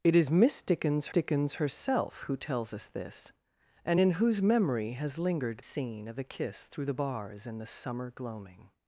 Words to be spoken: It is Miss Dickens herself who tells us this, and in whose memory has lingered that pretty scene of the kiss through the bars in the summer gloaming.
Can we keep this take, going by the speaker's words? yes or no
no